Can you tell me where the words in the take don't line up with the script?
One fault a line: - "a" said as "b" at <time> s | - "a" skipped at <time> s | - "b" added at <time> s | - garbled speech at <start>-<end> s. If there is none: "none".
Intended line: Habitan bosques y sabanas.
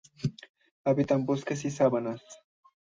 none